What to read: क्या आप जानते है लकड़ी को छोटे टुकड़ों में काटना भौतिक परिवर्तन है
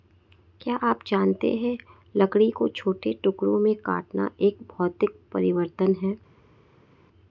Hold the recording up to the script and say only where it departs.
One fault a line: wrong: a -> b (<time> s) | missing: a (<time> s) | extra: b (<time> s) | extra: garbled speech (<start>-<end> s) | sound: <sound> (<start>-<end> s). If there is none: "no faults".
extra: एक (4.4 s)